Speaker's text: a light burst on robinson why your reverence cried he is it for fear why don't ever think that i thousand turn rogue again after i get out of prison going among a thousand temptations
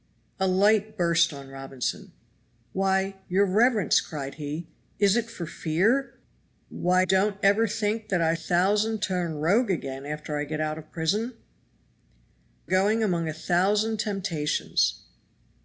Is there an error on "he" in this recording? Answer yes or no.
no